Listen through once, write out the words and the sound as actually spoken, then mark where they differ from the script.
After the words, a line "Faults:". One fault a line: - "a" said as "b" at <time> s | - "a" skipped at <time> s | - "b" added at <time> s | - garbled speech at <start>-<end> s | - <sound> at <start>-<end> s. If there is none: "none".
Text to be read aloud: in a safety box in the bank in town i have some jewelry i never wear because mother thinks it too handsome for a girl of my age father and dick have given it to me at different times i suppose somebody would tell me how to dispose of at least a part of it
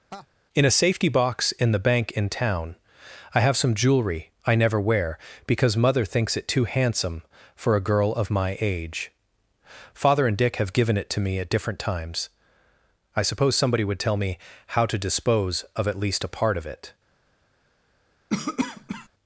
in a safety box in the bank in town i have some jewelry i never wear because mother thinks it too handsome for a girl of my age father and dick have given it to me at different times i suppose somebody would tell me how to dispose of at least a part of it
Faults:
- laugh at 0.1-0.3 s
- cough at 18.3-19.1 s